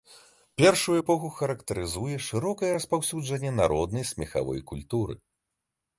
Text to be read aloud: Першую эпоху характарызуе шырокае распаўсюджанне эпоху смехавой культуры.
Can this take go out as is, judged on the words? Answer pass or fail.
fail